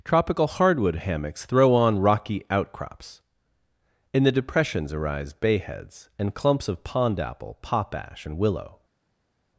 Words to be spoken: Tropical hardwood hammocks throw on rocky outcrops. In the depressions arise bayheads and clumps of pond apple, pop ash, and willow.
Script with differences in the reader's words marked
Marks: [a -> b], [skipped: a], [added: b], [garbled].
Tropical hardwood hammocks throw on rocky outcrops. In the depressions arise bayheads and clumps of pond apple, pop ash, and willow.